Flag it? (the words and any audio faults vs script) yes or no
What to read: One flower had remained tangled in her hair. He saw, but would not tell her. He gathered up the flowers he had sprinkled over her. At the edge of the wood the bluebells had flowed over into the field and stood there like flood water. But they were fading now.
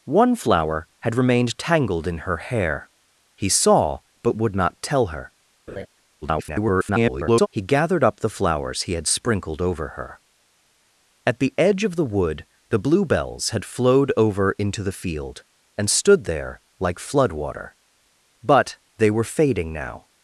yes